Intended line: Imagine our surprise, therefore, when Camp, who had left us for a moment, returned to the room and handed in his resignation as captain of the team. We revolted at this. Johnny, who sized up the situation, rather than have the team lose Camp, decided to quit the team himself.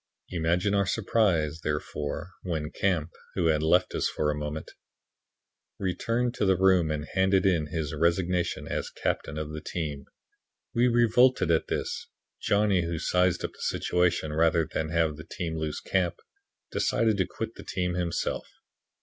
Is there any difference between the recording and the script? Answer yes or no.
no